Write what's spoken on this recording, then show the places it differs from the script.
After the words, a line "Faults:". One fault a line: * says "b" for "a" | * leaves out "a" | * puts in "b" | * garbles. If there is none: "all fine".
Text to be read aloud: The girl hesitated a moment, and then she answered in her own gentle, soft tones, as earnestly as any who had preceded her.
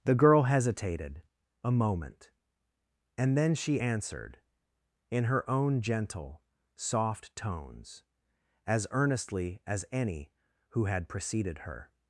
The girl hesitated a moment, and then she answered in her own gentle, soft tones, as earnestly as any who had preceded her.
Faults:
all fine